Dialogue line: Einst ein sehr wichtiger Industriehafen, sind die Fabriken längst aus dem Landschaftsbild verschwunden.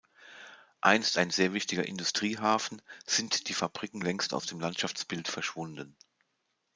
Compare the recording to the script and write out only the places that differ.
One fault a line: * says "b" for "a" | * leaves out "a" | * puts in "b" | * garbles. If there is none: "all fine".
all fine